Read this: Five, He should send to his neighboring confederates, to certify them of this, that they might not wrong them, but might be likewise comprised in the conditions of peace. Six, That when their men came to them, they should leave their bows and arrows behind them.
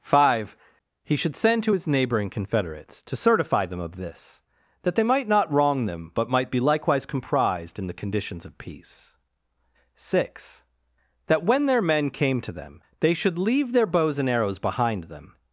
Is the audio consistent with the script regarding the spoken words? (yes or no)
yes